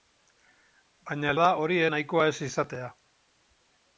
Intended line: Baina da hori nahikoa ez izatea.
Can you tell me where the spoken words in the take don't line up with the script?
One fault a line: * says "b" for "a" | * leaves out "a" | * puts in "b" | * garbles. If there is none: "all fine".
all fine